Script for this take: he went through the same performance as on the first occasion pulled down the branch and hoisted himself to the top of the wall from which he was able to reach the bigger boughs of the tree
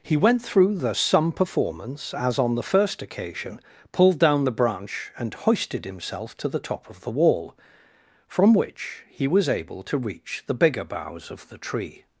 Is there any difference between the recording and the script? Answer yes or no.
yes